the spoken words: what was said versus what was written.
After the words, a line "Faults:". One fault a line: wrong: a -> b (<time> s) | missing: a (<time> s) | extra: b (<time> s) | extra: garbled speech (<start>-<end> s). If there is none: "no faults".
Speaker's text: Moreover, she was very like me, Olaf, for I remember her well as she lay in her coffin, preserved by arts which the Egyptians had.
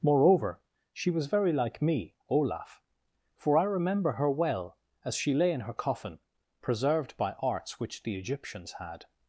Moreover, she was very like me, Olaf, for I remember her well as she lay in her coffin, preserved by arts which the Egyptians had.
Faults:
no faults